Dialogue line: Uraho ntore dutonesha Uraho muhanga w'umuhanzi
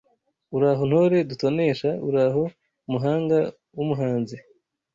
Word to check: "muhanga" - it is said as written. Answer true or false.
true